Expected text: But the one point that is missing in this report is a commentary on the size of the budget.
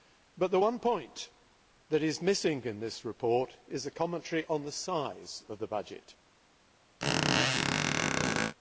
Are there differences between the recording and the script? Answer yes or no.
no